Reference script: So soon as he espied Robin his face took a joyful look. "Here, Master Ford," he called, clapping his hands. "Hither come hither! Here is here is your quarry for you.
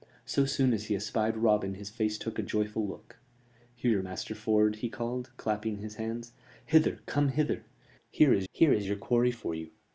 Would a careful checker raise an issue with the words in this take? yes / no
no